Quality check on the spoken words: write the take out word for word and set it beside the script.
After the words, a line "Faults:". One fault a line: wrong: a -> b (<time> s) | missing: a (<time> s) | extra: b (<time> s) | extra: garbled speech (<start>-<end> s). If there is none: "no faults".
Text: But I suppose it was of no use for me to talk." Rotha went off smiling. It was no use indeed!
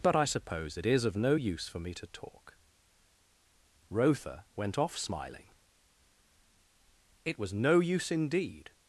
But I suppose it is of no use for me to talk." Rotha went off smiling. It was no use indeed!
Faults:
wrong: was -> is (0.8 s)